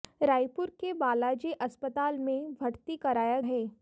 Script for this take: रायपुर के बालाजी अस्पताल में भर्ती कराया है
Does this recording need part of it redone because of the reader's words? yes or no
no